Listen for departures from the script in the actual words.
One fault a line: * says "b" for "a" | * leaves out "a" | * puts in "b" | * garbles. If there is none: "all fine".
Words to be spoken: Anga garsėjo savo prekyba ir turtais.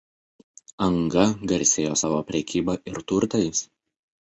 all fine